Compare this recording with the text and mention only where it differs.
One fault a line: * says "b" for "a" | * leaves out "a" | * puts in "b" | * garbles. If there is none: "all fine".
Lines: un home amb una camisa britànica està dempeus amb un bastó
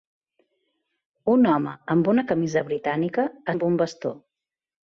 * leaves out "està dempeus"